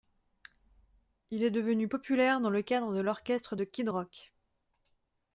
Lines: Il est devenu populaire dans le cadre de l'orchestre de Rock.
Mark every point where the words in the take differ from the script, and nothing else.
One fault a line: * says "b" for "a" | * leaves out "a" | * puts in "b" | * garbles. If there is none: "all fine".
* puts in "Kid"